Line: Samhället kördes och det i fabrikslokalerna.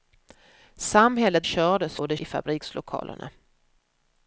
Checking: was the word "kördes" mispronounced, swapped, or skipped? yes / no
no